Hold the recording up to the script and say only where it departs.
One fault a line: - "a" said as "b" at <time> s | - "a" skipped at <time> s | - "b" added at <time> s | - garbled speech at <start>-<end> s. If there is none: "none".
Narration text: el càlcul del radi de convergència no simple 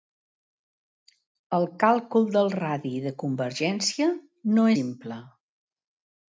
none